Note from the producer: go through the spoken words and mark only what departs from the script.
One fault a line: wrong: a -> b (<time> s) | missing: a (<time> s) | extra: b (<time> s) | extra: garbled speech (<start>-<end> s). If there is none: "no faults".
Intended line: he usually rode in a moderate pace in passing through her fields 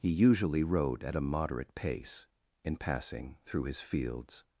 wrong: in -> at (1.0 s)
wrong: her -> his (3.6 s)